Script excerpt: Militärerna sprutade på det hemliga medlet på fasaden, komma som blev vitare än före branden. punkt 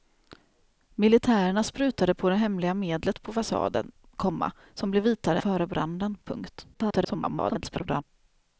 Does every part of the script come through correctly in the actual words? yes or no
no